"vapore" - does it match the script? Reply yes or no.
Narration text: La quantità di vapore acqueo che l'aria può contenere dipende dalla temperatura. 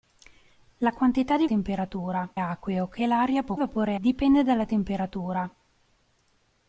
no